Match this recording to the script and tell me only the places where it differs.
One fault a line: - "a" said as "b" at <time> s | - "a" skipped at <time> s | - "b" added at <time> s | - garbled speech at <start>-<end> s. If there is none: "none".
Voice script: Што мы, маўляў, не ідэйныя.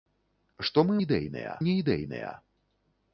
- "маўляў" said as "ідэйныя" at 1.0 s